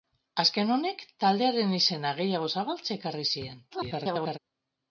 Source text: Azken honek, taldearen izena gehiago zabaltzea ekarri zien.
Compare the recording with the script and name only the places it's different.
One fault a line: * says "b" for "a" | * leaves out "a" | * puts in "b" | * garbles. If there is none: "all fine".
* garbles